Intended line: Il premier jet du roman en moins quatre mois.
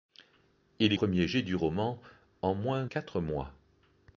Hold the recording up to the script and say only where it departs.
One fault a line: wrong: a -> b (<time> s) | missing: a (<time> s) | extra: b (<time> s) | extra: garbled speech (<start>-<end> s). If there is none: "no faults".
no faults